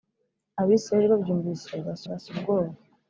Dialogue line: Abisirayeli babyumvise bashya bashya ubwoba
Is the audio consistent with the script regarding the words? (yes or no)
yes